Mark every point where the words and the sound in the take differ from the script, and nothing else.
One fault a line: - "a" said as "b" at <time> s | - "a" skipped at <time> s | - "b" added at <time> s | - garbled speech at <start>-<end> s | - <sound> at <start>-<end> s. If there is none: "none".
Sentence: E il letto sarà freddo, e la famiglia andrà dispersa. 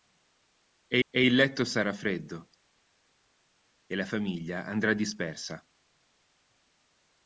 - "e" added at 1.1 s